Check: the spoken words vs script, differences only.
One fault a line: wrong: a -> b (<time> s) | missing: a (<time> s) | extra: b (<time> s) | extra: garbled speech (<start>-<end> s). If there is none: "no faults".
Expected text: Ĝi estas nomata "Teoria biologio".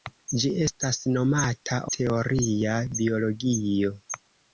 no faults